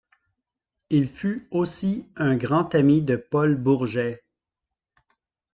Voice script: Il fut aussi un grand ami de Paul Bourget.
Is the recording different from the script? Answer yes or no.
no